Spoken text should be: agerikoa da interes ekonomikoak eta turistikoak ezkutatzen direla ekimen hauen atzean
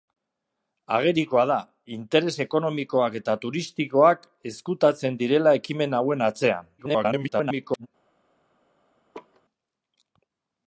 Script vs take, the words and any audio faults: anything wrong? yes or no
yes